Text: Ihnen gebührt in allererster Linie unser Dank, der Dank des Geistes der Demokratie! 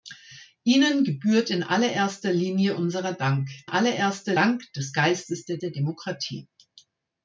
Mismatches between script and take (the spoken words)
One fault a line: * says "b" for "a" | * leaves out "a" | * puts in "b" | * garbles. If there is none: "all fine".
* says "allererster" for "der"
* puts in "der"